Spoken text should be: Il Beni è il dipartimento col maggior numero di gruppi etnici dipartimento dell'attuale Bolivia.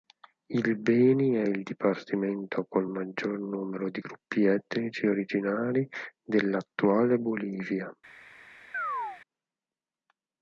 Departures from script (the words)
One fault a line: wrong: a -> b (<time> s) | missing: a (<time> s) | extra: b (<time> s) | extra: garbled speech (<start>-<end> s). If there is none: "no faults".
wrong: dipartimento -> originari (5.1 s)